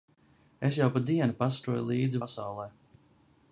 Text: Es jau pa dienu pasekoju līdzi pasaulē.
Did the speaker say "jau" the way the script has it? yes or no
yes